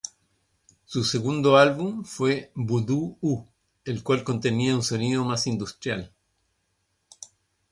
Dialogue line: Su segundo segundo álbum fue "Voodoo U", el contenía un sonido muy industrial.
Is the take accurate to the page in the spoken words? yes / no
no